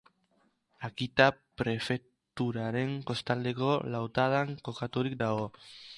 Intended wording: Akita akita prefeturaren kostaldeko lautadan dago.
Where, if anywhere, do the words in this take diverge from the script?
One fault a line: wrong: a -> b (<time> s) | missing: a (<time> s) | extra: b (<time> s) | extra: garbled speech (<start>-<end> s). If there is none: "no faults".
missing: akita (1.2 s)
extra: kokaturik (4.7 s)